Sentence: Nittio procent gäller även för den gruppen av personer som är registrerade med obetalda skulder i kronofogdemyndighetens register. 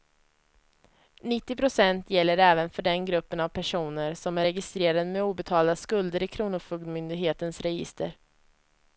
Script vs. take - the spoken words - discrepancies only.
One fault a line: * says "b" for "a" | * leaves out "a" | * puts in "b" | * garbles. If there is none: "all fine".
all fine